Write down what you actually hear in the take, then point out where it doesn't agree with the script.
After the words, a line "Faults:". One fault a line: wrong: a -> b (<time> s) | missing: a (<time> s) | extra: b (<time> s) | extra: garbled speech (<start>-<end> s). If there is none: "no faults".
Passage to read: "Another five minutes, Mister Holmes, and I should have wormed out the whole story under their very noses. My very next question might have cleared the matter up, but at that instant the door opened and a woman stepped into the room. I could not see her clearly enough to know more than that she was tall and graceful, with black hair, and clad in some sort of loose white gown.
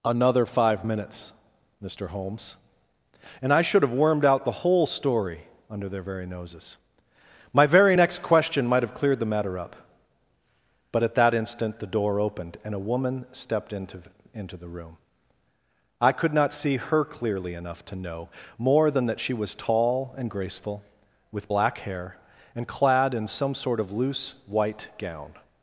"Another five minutes, Mister Holmes, and I should have wormed out the whole story under their very noses. My very next question might have cleared the matter up, but at that instant the door opened and a woman stepped into into the room. I could not see her clearly enough to know more than that she was tall and graceful, with black hair, and clad in some sort of loose white gown.
Faults:
extra: into (14.3 s)